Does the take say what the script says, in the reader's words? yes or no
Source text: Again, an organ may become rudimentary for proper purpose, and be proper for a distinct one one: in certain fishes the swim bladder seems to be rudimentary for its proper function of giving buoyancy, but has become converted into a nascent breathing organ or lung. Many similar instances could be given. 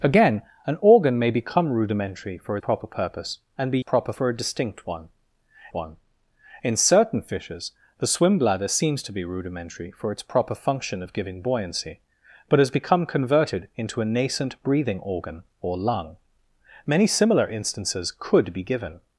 yes